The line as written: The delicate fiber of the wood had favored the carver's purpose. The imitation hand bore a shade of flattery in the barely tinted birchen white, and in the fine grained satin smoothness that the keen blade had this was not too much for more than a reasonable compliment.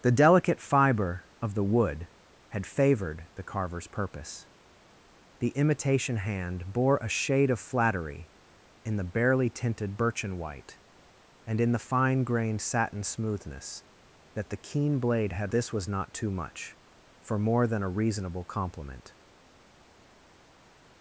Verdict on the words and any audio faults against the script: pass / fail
pass